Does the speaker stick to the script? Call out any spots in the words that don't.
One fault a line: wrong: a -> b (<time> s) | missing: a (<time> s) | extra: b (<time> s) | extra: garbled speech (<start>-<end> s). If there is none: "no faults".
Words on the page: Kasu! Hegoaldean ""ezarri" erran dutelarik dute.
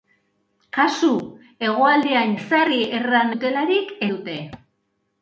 no faults